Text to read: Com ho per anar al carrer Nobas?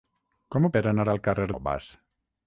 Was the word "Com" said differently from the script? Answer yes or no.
no